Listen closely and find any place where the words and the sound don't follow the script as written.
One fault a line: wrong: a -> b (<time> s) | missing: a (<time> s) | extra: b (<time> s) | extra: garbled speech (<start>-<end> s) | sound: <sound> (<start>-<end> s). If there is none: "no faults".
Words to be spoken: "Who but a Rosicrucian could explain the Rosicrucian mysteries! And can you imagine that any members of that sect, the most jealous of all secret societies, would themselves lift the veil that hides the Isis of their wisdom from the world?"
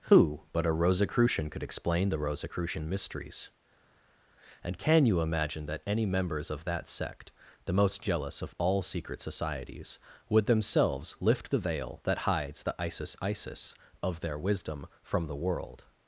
extra: Isis (13.2 s)